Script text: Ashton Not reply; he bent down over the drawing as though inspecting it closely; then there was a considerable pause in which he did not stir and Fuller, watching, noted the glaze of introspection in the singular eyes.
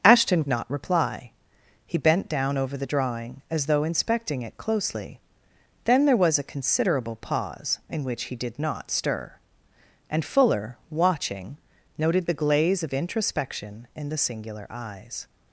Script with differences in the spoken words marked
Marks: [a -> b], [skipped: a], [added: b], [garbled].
Ashton Not reply; he bent down over the drawing as though inspecting it closely; then there was a considerable pause in which he did not stir and Fuller, watching, noted the glaze of introspection in the singular eyes.